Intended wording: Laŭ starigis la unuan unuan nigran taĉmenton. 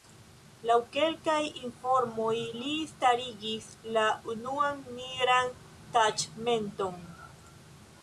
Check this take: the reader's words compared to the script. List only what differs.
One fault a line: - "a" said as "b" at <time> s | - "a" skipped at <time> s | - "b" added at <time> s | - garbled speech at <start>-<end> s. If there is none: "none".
- "kelkaj informoj li" added at 0.9 s
- "unuan" skipped at 4.9 s